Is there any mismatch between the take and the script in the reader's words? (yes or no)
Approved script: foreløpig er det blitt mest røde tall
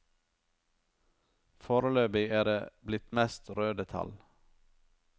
no